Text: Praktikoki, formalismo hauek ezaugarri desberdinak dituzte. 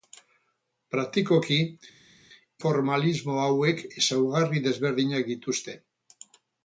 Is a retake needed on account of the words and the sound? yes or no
no